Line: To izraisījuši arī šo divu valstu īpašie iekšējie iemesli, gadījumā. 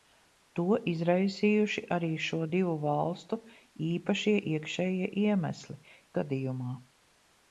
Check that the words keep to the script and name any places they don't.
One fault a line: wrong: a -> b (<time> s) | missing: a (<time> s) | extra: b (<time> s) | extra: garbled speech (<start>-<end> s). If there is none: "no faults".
no faults